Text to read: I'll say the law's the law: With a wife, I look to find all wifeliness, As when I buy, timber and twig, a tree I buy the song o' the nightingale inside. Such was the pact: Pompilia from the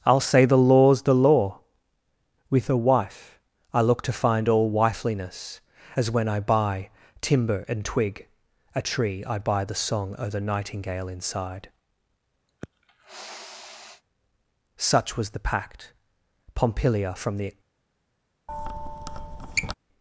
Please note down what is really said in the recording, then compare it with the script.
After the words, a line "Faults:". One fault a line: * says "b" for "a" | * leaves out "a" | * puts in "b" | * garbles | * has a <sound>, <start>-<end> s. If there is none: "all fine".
I'll say the law's the law: With a wife, I look to find all wifeliness, As when I buy, timber and twig, a tree I buy the song o' the nightingale inside. Such was the pact: Pompilia from the
Faults:
* has a sniff, 12.5-14.0 s
* has a squeak, 18.5-19.7 s